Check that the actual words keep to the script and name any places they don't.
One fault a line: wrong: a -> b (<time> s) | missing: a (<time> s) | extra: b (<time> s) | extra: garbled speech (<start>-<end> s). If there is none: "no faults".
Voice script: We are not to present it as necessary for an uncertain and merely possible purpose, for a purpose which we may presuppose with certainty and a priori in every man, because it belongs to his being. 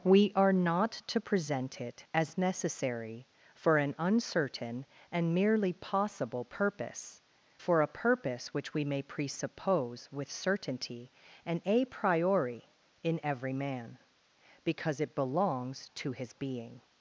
no faults